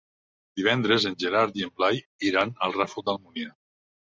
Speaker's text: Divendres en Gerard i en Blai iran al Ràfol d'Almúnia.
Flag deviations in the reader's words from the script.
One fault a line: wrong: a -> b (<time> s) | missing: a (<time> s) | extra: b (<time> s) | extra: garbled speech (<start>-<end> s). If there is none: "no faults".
no faults